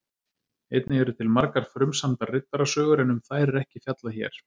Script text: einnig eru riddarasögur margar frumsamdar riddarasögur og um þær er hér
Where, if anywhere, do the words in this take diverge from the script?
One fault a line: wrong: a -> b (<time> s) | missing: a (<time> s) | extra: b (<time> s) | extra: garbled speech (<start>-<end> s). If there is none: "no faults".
wrong: riddarasögur -> til (1.2 s)
wrong: og -> en (3.1 s)
extra: ekki fjallað (3.6 s)